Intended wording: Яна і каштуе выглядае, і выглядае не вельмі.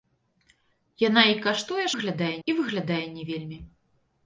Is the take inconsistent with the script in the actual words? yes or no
no